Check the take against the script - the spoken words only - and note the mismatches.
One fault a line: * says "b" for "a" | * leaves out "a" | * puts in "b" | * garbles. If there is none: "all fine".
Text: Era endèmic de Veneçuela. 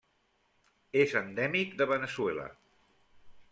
* says "És" for "Era"